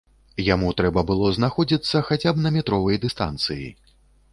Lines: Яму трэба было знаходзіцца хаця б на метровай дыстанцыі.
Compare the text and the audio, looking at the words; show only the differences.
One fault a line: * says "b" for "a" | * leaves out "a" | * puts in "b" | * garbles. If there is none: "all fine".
all fine